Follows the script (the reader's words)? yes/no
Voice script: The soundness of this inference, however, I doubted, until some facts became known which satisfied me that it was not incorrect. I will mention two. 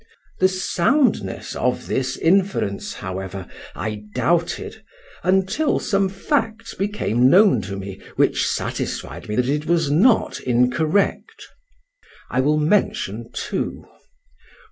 no